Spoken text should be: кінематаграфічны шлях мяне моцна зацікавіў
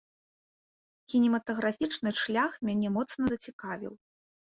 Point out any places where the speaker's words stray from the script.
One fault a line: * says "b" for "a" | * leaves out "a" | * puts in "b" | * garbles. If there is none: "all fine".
all fine